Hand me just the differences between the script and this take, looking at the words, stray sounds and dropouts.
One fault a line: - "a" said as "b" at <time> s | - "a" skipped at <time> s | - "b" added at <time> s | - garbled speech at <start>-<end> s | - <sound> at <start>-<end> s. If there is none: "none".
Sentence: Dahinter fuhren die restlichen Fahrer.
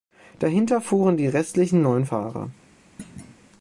- "neun" added at 1.8 s
- thud at 3.0-3.4 s